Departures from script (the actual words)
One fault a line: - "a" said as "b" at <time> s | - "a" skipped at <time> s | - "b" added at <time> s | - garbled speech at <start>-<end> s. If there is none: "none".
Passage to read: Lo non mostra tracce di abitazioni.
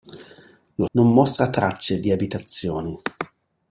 none